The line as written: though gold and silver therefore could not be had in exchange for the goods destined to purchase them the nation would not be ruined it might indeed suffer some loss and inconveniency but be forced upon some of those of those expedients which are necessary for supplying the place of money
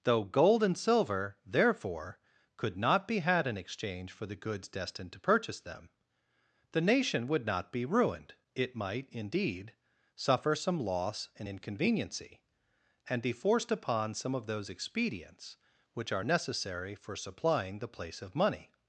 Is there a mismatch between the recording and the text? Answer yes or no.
yes